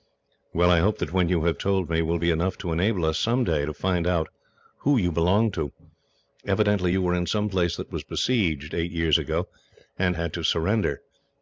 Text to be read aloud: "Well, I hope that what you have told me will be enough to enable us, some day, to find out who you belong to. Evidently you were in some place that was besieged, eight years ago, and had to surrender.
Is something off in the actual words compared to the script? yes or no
no